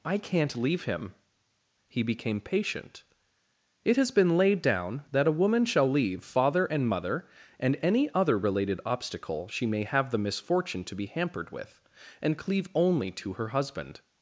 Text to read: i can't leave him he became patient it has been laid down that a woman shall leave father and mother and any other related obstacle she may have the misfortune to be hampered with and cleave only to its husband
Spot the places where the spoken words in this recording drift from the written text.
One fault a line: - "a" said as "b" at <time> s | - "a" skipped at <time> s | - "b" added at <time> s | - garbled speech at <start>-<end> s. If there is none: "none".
- "its" said as "her" at 13.3 s